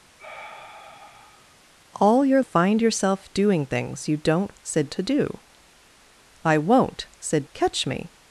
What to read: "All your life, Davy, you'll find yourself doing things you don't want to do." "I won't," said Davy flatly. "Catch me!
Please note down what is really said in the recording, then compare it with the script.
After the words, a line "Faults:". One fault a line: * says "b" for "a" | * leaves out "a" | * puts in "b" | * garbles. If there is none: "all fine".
"All your find yourself doing things you don't said to do." "I won't," said. "Catch me!
Faults:
* leaves out "life Davy you'll"
* says "said" for "want"
* leaves out "Davy flatly"